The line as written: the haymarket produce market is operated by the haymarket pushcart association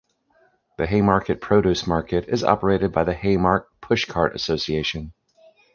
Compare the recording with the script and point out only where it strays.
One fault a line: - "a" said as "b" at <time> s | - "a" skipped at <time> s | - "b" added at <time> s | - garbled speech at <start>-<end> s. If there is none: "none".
none